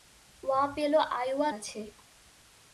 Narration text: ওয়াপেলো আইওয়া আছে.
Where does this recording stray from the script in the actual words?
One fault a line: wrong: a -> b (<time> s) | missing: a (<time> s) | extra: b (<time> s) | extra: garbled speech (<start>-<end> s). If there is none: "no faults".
no faults